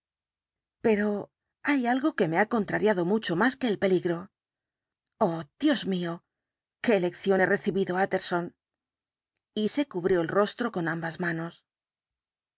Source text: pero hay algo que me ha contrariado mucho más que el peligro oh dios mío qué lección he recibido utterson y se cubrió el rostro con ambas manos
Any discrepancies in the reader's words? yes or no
no